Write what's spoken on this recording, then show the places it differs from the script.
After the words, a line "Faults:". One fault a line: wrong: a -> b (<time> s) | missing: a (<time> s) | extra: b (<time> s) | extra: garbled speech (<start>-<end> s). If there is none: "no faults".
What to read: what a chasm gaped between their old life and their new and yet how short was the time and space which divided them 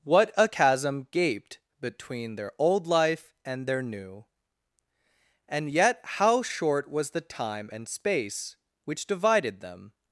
what a chasm gaped between their old life and their new and yet how short was the time and space which divided them
Faults:
no faults